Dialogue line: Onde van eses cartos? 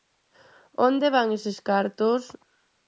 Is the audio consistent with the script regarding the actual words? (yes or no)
yes